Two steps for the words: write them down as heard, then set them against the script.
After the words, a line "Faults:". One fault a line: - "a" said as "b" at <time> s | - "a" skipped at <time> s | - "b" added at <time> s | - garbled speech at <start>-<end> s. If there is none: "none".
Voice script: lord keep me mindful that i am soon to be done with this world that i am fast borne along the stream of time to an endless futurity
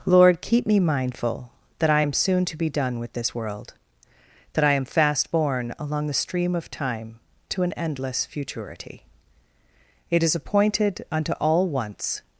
lord keep me mindful that i am soon to be done with this world that i am fast borne along the stream of time to an endless futurity it is appointed unto all once
Faults:
- "it is appointed unto all once" added at 10.1 s